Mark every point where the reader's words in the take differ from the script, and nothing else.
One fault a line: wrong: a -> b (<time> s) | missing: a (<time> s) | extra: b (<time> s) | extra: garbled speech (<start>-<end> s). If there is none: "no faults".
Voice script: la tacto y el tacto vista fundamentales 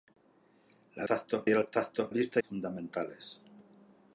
no faults